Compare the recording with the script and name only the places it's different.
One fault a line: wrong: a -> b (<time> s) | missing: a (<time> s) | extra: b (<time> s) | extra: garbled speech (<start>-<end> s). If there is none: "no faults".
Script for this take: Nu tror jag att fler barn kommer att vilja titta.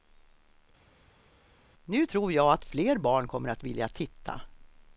no faults